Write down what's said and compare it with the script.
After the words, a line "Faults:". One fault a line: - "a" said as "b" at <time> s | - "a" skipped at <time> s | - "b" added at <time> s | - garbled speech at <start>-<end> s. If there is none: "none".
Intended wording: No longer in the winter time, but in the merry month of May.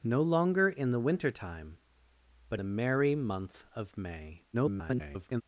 No longer in the winter time, but the merry month of May. [garbled]
Faults:
- "in" skipped at 2.6 s
- garbled speech at 4.5-5.4 s